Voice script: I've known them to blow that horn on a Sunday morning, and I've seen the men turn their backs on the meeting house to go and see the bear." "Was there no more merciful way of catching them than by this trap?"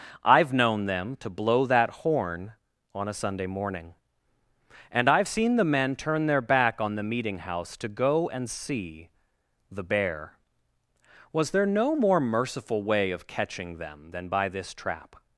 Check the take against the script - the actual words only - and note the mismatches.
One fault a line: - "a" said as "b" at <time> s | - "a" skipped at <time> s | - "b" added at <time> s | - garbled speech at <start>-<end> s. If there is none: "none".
- "backs" said as "back" at 6.4 s